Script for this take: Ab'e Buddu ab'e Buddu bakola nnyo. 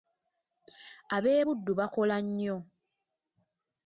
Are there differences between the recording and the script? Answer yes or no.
yes